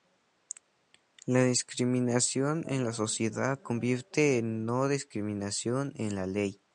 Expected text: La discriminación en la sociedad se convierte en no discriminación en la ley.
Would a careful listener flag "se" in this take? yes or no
yes